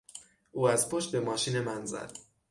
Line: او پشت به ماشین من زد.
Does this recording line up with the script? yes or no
no